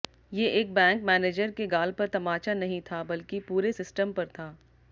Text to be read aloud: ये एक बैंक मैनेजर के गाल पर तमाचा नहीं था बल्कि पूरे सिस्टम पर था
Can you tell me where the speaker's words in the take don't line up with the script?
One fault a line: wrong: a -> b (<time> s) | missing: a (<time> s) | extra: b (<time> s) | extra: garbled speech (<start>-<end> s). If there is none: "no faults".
no faults